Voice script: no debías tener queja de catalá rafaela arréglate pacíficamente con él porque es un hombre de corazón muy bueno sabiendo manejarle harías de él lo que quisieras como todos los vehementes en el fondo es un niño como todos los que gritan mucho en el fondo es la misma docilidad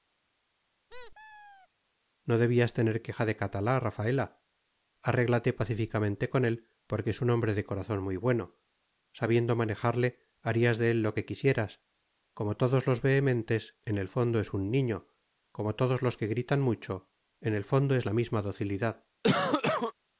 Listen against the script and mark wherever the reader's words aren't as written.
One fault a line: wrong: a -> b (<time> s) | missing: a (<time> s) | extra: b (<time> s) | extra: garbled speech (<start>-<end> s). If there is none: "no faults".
no faults